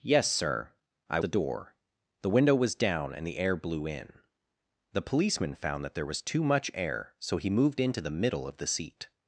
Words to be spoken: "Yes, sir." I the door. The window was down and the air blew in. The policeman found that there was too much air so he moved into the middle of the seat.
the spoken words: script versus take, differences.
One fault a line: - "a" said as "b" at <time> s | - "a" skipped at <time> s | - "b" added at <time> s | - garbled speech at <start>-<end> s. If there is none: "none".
none